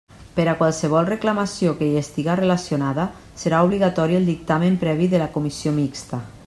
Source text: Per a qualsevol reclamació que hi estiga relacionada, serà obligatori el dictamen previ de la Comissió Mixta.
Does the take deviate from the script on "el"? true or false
false